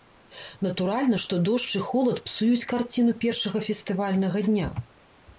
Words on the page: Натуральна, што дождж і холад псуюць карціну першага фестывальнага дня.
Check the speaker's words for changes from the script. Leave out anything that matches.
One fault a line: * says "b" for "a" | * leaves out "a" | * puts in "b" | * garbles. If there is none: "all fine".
all fine